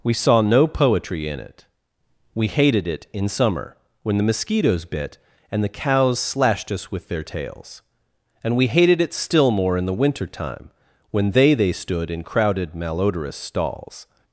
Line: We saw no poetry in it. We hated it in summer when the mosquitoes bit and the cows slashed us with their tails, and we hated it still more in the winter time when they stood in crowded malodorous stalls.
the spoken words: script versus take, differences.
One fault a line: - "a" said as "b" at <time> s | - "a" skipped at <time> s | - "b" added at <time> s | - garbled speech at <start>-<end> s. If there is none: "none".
- "they" added at 11.5 s